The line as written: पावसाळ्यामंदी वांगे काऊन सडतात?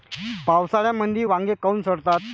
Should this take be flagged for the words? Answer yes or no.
no